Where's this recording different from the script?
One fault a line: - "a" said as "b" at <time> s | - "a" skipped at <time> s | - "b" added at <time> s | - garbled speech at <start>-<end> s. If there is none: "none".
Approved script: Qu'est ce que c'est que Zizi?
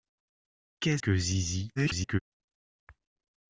- "ce que c'est" skipped at 1.0 s
- garbled speech at 1.8-2.2 s